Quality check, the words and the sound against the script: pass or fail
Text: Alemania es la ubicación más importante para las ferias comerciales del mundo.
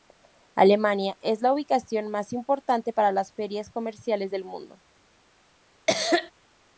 fail